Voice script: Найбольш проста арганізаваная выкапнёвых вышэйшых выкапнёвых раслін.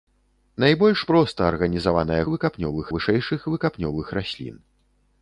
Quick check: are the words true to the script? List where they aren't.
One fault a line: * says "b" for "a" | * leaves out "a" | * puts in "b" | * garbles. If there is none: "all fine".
all fine